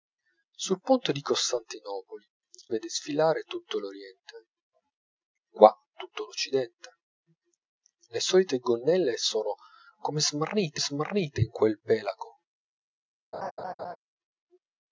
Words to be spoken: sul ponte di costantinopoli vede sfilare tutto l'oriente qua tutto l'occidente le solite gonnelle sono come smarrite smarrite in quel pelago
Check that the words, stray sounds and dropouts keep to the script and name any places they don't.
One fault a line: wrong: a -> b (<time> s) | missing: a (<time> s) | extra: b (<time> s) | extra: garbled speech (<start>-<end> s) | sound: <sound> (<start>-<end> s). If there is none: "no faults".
sound: laugh (13.3-14.0 s)